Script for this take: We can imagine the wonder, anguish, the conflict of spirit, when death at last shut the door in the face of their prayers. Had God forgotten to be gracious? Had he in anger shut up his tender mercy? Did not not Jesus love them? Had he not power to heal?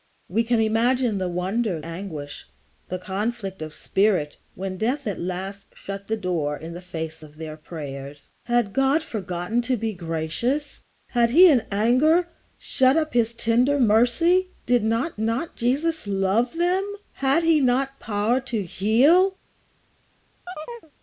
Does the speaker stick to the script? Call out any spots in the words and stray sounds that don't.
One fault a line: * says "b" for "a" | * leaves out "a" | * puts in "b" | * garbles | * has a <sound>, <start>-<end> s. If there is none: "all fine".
* has a chirp, 20.5-20.9 s